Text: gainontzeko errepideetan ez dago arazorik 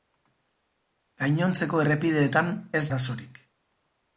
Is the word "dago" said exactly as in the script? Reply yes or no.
no